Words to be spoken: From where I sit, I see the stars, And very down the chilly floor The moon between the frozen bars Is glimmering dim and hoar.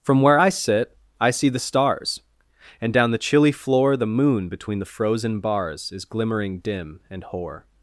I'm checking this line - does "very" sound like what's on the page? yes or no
no